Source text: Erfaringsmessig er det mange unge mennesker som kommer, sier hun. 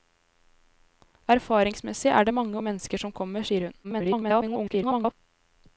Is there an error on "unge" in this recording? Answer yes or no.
yes